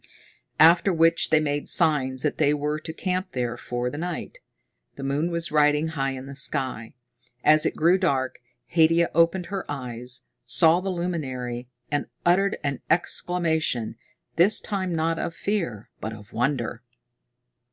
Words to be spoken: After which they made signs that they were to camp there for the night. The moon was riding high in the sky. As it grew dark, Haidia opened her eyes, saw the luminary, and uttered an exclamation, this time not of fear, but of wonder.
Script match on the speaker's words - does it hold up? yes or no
yes